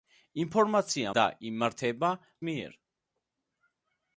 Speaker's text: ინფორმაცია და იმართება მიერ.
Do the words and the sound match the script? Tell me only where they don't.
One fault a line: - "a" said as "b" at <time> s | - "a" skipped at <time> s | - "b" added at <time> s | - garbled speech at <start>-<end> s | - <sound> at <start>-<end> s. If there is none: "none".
none